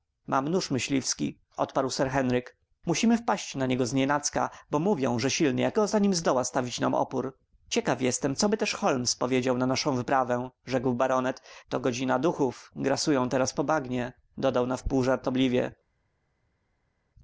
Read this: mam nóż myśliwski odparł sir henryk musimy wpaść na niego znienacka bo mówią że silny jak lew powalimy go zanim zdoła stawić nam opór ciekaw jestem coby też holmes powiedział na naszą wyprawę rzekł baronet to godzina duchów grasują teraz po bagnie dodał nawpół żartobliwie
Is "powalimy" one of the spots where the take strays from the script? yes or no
yes